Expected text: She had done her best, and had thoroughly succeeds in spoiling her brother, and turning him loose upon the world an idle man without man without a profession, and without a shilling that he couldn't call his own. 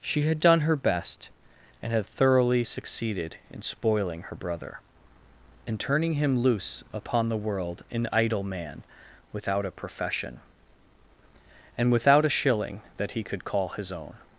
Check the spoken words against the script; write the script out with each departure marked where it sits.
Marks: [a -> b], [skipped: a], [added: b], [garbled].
She had done her best, and had thoroughly [succeeds -> succeeded] in spoiling her brother, and turning him loose upon the world an idle man without [skipped: man without] a profession, and without a shilling that he [couldn't -> could] call his own.